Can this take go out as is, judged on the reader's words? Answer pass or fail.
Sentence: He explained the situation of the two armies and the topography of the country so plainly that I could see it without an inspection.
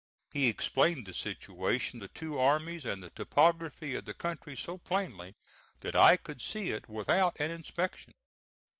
fail